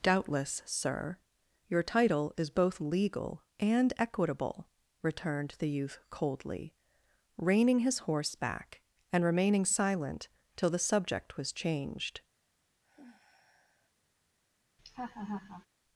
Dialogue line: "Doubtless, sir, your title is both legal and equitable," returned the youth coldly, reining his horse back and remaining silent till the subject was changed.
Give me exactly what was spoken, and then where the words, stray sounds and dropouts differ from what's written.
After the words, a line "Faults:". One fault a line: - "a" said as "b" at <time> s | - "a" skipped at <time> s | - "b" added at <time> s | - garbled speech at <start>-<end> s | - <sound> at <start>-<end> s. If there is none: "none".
"Doubtless, sir, your title is both legal and equitable," returned the youth coldly, reining his horse back and remaining silent till the subject was changed.
Faults:
- sigh at 12.8-13.9 s
- laugh at 14.8-15.7 s